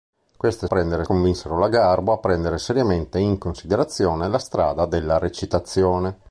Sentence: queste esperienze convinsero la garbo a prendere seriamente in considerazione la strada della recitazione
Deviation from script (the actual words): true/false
true